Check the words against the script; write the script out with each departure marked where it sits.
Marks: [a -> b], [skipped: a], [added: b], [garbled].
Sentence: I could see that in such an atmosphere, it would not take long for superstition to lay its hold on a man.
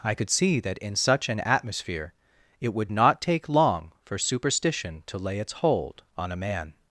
I could see that in such an atmosphere, it would not take long for superstition to lay its hold on a man.